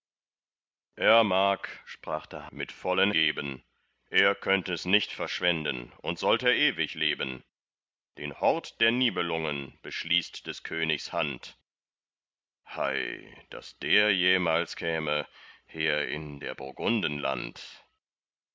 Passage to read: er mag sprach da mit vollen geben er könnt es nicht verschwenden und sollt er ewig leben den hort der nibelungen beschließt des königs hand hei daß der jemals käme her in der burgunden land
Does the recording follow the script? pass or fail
pass